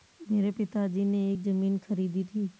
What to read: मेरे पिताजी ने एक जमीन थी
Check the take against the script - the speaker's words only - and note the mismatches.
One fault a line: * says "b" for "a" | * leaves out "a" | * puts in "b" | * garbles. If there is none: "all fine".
* puts in "खरीदी"